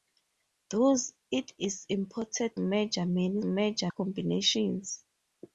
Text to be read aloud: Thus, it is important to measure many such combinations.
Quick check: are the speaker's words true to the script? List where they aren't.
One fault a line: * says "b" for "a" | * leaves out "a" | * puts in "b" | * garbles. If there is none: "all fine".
* leaves out "to"
* says "measure" for "such"